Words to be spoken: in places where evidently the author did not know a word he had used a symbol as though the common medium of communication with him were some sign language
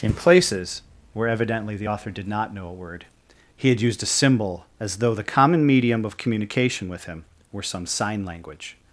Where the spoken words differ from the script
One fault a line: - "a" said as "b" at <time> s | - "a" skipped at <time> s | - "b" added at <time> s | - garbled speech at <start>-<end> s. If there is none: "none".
none